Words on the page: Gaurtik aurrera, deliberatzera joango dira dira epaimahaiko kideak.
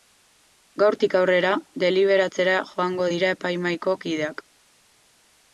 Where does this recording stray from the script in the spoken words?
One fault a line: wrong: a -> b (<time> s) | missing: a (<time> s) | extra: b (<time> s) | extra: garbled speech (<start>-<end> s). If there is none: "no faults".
missing: dira (3.4 s)